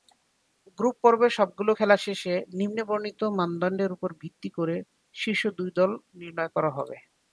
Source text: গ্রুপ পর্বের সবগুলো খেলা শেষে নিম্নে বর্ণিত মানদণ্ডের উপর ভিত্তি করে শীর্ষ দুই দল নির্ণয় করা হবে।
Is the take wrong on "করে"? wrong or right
right